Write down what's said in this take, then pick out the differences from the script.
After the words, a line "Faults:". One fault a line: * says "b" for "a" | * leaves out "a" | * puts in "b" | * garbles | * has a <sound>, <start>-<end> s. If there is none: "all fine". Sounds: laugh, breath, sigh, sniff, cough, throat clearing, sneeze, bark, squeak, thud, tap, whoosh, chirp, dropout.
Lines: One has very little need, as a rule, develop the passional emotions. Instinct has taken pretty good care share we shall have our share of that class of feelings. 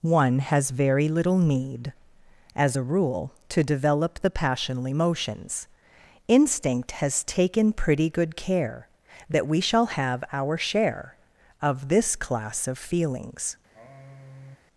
One has very little need, as a rule, to develop the passional emotions. Instinct has taken pretty good care that we shall have our share of this class of feelings.
Faults:
* puts in "to"
* says "that" for "share"
* says "this" for "that"
* has a sigh, 13.7-14.6 s